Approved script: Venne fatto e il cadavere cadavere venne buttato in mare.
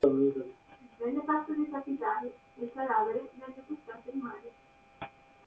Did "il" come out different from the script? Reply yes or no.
no